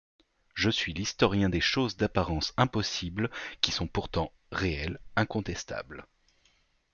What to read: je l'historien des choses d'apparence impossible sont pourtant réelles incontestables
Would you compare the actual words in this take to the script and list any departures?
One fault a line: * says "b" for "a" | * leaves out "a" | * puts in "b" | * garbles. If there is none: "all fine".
* puts in "suis"
* puts in "qui"